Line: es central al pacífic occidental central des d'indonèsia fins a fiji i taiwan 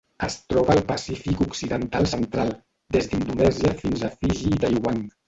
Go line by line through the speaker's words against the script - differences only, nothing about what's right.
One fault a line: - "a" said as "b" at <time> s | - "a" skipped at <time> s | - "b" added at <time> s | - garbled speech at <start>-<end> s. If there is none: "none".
- "central" said as "troba" at 0.5 s